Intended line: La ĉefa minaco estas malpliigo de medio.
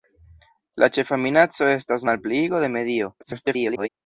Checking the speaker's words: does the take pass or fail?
fail